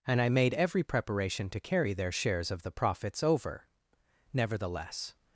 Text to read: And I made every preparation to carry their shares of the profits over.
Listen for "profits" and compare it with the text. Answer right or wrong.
right